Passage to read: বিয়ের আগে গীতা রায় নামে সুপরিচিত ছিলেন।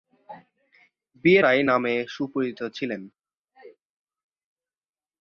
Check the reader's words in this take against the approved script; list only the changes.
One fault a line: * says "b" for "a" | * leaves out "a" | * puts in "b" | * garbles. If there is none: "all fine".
* leaves out "আগে গীতা"